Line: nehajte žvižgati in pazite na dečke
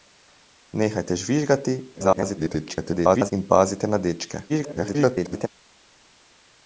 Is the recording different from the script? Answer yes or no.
yes